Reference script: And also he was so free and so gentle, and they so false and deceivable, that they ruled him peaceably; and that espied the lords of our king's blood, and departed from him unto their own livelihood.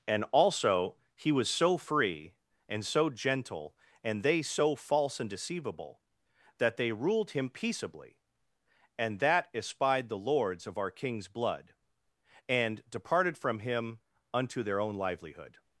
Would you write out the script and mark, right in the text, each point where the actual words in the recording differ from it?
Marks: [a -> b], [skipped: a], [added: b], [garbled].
And also he was so free and so gentle, and they so false and deceivable, that they ruled him peaceably; and that espied the lords of our king's blood, and departed from him unto their own livelihood.